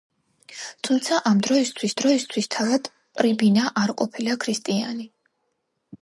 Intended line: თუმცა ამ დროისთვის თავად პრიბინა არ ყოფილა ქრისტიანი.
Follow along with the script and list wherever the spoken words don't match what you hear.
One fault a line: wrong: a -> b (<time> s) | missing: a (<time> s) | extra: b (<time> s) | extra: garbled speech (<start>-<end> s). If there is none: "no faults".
extra: დროისთვის (2.0 s)